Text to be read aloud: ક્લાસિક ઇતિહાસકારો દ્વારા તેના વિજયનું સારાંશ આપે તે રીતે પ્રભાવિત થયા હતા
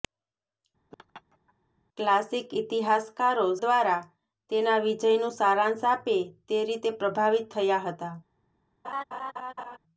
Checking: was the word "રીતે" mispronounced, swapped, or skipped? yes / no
no